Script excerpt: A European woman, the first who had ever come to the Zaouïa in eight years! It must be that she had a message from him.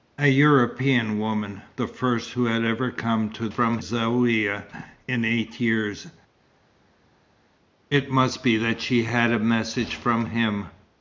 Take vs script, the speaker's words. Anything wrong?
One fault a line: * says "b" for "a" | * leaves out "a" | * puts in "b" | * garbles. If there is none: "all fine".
* says "from" for "the"